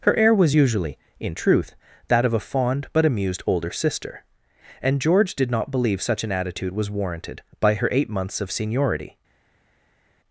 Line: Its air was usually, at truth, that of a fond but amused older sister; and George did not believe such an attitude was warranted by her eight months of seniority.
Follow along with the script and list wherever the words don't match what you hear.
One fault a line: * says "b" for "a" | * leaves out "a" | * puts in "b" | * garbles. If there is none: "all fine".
* says "Her" for "Its"
* says "in" for "at"